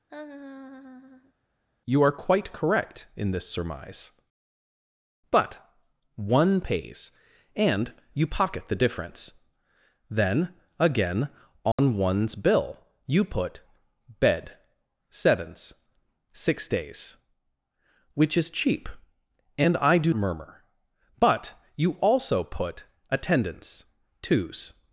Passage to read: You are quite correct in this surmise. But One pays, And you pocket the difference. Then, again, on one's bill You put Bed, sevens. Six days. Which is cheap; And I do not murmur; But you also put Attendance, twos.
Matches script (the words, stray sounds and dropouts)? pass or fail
fail